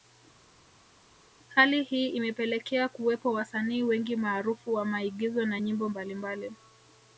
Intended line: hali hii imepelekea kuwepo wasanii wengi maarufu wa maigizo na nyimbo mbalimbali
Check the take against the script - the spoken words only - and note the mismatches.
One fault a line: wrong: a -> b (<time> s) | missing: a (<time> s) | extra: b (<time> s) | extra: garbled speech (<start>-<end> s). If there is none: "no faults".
no faults